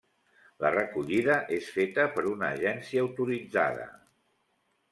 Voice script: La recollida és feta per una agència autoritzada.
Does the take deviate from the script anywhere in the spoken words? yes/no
no